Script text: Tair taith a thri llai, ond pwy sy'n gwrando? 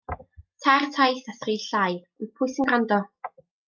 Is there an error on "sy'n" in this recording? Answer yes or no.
no